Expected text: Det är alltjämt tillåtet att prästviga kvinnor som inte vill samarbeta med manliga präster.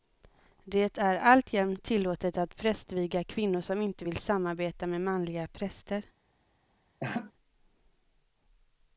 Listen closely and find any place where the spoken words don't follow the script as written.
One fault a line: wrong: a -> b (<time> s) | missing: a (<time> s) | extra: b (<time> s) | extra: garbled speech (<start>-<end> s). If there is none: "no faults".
no faults